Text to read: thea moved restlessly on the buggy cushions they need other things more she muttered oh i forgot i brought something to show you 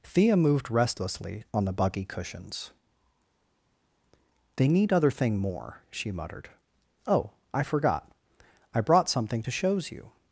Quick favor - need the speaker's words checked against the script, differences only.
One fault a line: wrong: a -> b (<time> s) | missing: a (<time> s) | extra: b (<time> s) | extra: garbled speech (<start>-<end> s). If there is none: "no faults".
wrong: things -> thing (5.1 s)
wrong: show -> shows (9.5 s)